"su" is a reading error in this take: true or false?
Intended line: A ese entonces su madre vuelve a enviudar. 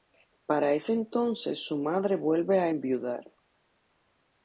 false